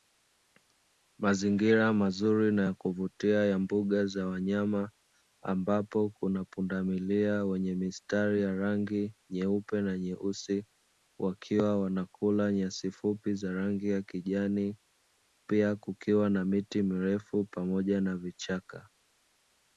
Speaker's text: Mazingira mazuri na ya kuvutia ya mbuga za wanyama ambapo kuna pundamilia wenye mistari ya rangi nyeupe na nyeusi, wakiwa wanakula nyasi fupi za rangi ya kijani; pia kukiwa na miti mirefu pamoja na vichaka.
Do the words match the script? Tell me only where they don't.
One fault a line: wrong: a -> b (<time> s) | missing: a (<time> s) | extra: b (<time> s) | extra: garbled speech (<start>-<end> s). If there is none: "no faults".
no faults